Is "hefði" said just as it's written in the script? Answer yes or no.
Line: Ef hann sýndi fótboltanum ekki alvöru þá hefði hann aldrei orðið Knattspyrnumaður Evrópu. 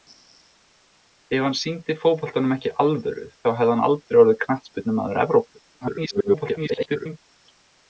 yes